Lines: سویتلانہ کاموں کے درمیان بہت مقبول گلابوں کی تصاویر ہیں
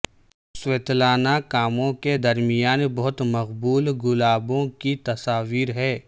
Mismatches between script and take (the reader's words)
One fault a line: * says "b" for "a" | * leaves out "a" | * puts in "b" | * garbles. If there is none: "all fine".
all fine